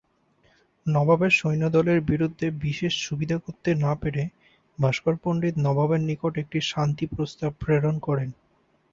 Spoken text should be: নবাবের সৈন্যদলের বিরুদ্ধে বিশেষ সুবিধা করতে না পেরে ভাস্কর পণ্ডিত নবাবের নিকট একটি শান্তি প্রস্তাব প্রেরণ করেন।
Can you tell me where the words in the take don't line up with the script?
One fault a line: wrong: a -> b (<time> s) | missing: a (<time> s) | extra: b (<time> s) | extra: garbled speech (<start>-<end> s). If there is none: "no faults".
no faults